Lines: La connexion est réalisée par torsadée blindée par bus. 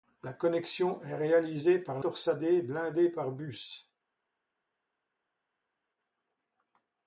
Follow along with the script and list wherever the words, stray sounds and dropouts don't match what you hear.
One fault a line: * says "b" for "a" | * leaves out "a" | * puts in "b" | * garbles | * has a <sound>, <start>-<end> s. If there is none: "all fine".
all fine